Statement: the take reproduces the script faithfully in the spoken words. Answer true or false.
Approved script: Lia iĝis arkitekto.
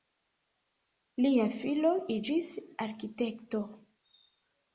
false